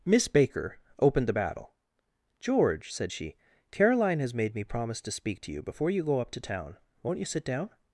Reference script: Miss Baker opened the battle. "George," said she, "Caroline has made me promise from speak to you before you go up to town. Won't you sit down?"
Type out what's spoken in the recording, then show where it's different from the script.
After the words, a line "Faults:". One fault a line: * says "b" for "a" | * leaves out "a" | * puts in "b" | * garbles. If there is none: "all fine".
Miss Baker opened the battle. "George," said she, "Caroline has made me promise to speak to you before you go up to town. Won't you sit down?"
Faults:
* says "to" for "from"